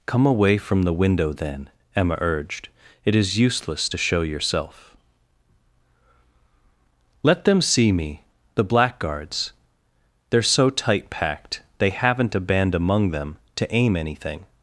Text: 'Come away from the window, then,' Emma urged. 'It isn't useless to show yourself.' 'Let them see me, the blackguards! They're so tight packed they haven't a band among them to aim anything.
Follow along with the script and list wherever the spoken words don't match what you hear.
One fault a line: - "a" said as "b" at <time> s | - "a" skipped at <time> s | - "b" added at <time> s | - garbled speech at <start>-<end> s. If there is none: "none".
- "isn't" said as "is" at 3.1 s